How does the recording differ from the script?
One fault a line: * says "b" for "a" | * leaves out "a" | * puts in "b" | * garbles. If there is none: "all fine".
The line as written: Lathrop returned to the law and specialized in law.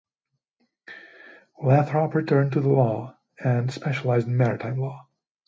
* puts in "maritime"